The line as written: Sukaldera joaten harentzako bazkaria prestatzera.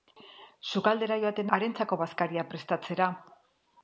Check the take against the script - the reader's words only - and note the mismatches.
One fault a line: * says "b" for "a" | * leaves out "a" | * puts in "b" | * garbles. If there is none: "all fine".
all fine